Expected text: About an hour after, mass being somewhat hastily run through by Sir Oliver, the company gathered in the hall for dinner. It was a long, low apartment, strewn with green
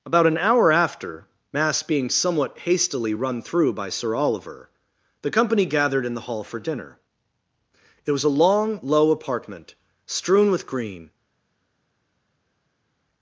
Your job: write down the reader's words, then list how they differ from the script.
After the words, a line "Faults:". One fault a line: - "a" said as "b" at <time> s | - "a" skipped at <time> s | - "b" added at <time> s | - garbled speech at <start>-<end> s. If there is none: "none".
About an hour after, mass being somewhat hastily run through by Sir Oliver, the company gathered in the hall for dinner. It was a long, low apartment, strewn with green
Faults:
none